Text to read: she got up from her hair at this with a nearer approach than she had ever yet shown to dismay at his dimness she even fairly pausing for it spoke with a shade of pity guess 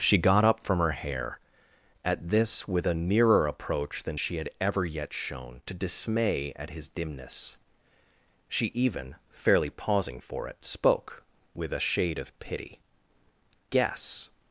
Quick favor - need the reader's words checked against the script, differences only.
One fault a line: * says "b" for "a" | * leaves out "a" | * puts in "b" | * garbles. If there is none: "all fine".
all fine